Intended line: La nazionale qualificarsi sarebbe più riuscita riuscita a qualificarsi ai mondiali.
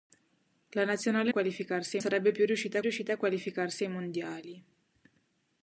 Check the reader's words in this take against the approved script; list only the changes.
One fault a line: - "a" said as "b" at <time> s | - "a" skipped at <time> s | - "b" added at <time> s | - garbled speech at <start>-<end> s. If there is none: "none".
none